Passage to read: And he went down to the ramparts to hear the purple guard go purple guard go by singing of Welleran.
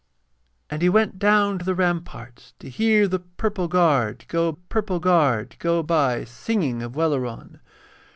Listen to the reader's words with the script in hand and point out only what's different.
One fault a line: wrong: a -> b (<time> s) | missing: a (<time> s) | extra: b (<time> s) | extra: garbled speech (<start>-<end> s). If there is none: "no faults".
no faults